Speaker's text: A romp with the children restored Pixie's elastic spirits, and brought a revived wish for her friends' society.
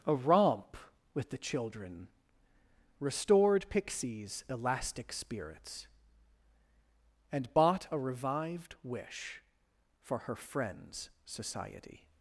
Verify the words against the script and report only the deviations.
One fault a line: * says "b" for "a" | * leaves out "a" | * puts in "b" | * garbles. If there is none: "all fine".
* says "bought" for "brought"